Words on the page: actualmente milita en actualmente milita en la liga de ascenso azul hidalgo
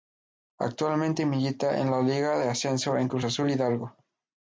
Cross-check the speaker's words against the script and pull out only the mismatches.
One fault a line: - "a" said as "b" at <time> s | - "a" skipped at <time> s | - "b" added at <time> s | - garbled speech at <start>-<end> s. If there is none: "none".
- "actualmente milita en" skipped at 1.9 s
- "en cruz" added at 3.0 s